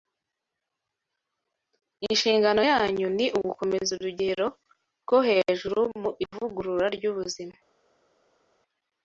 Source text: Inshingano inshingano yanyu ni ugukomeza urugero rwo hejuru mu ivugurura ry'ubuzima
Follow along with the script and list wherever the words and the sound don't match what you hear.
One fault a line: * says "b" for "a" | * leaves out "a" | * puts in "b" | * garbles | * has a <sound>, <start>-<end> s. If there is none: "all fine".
* leaves out "inshingano"